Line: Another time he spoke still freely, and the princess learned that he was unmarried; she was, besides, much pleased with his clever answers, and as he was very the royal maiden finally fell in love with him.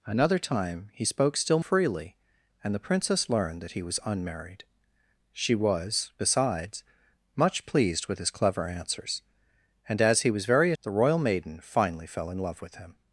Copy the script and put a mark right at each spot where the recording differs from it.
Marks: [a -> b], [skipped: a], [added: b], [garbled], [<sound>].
Another time he spoke still freely, and the princess learned that he was unmarried; she was, besides, much pleased with his clever answers, and as he was very the royal maiden finally fell in love with him.